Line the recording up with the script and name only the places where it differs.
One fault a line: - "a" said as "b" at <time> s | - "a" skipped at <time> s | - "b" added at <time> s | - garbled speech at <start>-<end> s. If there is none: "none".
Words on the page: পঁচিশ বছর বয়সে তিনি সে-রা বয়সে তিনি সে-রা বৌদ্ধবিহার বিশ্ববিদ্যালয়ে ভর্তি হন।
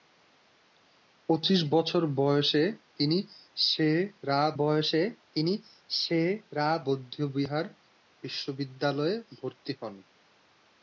none